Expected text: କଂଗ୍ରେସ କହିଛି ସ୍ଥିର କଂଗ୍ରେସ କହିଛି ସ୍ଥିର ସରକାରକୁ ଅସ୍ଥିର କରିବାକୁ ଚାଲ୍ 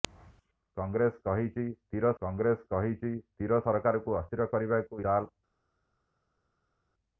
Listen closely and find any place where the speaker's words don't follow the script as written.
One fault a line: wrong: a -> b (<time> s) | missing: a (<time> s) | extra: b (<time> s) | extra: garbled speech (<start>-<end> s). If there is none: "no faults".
no faults